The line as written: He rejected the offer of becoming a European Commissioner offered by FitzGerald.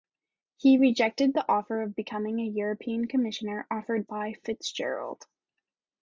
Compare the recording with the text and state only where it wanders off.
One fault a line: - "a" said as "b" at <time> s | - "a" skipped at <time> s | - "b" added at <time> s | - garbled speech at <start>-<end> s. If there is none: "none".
none